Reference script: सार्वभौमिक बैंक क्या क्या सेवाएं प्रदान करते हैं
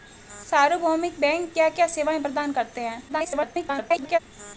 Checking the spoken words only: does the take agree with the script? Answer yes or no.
no